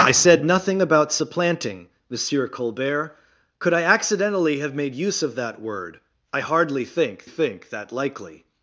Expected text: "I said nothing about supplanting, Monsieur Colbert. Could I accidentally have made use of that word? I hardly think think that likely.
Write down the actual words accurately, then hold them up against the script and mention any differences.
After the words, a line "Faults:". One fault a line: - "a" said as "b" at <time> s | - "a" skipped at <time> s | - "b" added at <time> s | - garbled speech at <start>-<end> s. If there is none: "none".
"I said nothing about supplanting, Monsieur Colbert. Could I accidentally have made use of that word? I hardly think think that likely.
Faults:
none